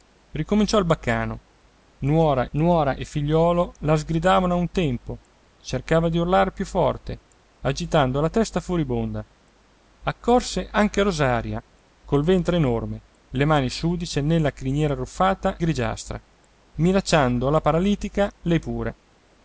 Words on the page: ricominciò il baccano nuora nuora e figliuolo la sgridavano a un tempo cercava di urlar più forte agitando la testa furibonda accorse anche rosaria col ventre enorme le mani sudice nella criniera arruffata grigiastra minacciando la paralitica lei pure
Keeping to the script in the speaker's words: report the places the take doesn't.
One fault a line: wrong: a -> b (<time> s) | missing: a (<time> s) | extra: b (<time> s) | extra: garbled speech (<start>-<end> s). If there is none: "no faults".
no faults